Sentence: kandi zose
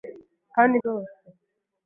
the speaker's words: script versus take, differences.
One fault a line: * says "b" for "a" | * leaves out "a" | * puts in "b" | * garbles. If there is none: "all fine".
all fine